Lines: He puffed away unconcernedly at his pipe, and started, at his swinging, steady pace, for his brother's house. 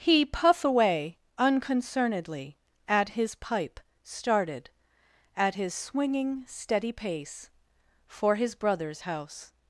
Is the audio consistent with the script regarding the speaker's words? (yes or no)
no